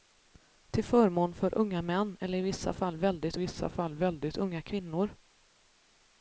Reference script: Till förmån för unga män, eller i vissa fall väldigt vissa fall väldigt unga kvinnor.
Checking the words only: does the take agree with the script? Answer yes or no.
yes